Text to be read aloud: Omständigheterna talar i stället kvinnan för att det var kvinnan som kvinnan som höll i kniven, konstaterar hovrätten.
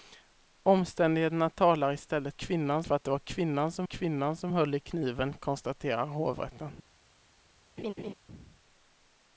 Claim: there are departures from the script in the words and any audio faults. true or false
true